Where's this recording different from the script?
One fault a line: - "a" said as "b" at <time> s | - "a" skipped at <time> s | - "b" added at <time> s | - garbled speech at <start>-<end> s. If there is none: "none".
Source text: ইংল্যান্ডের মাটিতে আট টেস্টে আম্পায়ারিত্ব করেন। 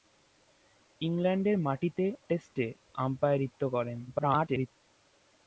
- "আট" skipped at 2.0 s
- garbled speech at 4.1-4.7 s